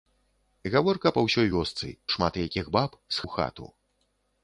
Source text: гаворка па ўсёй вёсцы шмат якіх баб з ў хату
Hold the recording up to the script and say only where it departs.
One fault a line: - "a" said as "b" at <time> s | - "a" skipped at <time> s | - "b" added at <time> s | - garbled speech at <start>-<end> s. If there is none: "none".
none